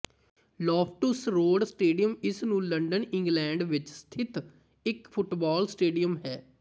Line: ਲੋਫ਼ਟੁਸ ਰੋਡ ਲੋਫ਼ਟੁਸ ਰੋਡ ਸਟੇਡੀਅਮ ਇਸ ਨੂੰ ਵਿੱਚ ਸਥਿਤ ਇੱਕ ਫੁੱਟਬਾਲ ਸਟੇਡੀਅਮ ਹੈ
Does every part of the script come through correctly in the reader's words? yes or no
no